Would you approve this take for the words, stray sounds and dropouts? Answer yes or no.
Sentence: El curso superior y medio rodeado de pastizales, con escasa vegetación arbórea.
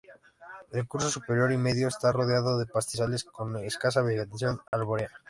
no